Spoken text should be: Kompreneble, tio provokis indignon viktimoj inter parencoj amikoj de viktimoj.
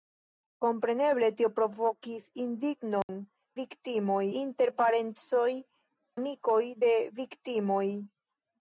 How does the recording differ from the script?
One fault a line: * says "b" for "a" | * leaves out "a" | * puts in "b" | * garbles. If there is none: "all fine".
all fine